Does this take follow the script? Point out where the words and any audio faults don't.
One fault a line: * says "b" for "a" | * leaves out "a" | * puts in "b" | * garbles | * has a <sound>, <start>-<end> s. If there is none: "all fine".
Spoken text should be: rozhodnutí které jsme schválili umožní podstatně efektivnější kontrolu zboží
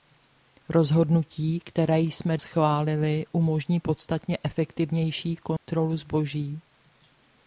* has a dropout, 5.6-5.7 s